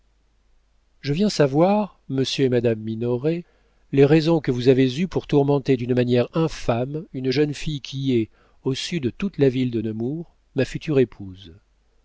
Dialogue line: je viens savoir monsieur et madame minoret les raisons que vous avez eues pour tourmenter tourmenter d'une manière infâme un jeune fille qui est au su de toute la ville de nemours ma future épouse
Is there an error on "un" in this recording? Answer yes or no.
yes